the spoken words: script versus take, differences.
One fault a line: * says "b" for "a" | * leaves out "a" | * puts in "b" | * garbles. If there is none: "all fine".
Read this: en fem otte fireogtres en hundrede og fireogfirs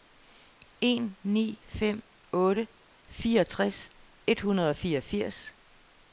* puts in "ni"
* says "et" for "en"